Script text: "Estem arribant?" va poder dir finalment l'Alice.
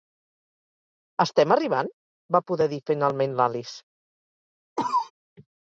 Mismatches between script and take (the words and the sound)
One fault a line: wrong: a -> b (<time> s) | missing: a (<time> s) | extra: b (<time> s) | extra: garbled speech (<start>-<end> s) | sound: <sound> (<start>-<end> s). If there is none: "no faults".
sound: cough (4.8-5.1 s)